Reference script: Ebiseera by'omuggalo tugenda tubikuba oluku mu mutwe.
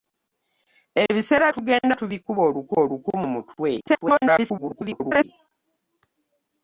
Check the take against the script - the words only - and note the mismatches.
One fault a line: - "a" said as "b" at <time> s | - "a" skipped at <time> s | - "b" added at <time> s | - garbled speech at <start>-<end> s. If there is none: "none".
- "by'omuggalo" skipped at 1.5 s
- "oluku" added at 2.8 s
- garbled speech at 3.8-5.2 s